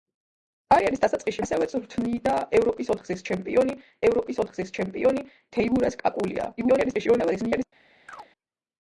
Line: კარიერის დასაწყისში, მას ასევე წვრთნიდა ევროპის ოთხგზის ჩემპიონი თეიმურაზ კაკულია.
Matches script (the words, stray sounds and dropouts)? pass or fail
fail